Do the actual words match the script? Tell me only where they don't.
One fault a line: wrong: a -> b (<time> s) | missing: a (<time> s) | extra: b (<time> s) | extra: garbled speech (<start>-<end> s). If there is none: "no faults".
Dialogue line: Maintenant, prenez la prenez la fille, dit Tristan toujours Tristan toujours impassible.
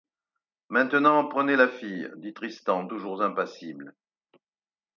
missing: prenez la (1.7 s)
missing: Tristan toujours (3.2 s)